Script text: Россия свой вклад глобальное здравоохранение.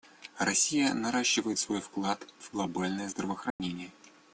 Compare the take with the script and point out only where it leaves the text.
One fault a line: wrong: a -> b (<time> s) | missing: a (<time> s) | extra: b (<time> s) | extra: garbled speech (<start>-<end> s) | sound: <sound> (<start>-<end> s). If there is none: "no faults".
extra: наращивает (0.9 s)
extra: в (2.4 s)
sound: dropout (3.5-3.6 s)